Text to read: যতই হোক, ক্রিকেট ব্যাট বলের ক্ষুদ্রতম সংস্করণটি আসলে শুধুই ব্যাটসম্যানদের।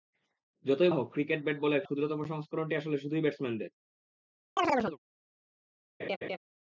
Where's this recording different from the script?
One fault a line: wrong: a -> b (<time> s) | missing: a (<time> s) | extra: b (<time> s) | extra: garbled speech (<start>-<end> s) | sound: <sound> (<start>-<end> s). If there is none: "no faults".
sound: chirp (4.6-5.0 s)
sound: laugh (6.0-6.4 s)